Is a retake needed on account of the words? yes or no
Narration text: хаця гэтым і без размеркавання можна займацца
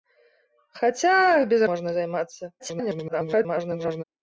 yes